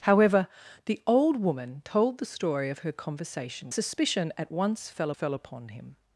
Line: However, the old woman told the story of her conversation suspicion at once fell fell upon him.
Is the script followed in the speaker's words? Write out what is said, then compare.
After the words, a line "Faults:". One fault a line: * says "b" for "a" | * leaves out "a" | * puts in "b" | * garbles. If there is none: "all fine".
However, the old woman told the story of her conversation suspicion at once fell fell upon him.
Faults:
all fine